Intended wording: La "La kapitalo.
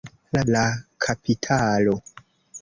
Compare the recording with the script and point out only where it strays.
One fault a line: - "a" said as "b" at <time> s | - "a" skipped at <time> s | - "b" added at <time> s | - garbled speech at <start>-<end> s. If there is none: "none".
none